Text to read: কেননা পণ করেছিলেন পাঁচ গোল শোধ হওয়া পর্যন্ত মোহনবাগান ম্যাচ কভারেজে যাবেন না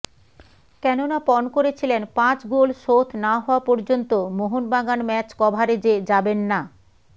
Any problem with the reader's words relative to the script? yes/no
yes